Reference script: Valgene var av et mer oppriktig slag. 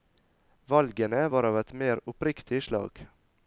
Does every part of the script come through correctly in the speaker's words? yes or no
yes